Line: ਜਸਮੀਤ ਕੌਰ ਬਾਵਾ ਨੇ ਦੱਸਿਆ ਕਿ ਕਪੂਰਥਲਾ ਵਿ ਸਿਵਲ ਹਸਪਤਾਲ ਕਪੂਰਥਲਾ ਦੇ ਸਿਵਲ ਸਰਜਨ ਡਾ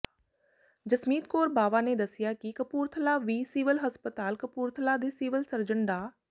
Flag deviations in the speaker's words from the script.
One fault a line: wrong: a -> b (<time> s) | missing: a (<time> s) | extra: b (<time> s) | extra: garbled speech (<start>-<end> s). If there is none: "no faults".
no faults